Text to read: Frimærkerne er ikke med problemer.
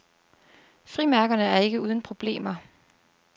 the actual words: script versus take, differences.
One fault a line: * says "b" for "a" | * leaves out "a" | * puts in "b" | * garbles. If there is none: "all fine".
* says "uden" for "med"